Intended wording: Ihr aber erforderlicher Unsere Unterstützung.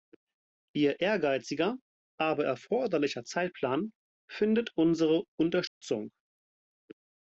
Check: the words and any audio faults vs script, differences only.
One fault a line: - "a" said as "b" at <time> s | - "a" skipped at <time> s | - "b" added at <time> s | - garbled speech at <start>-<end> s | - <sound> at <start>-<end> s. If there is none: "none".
- "ehrgeiziger" added at 1.0 s
- "Zeitplan findet" added at 3.2 s
- dropout at 5.7-5.8 s